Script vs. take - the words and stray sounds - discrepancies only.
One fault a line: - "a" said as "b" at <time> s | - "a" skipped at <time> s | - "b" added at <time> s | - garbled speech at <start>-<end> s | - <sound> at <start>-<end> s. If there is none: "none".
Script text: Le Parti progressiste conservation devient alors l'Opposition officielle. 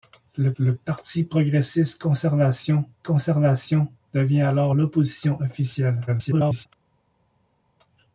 - "le" added at 0.6 s
- "conservation" added at 3.0 s
- garbled speech at 6.1-6.7 s